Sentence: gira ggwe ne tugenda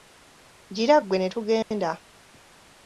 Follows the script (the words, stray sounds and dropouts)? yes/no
no